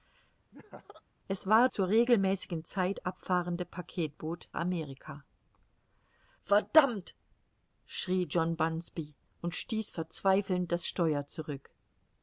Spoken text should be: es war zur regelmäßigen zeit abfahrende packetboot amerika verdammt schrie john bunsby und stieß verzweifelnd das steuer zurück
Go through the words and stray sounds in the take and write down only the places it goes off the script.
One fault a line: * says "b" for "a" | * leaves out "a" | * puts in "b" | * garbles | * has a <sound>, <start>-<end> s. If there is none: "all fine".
* has a laugh, 0.5-1.0 s